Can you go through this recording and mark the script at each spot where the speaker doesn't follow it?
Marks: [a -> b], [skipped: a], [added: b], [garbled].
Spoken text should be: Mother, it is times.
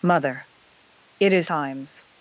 Mother, it is times.